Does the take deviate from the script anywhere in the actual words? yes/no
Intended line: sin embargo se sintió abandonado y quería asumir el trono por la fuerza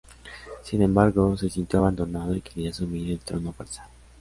yes